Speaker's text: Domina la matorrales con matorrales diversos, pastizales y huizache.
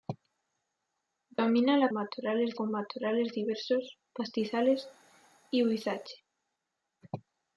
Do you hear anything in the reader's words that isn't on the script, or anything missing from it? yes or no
no